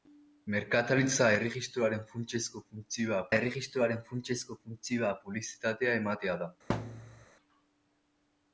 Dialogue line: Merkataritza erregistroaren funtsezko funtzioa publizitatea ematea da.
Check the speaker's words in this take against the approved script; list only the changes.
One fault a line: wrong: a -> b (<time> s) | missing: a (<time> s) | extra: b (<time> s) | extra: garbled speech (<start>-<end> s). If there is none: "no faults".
extra: erregistroaren funtsezko funtzioa (3.4 s)